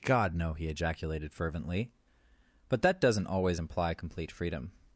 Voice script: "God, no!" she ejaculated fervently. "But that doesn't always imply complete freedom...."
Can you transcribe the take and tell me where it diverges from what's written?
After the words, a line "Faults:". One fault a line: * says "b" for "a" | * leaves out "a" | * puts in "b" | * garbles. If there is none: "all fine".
"God, no!" he ejaculated fervently. "But that doesn't always imply complete freedom...."
Faults:
* says "he" for "she"